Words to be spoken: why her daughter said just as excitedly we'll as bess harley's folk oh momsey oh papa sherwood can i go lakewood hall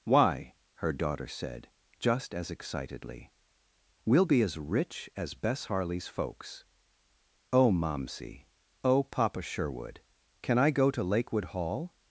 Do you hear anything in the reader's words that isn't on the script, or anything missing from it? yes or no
yes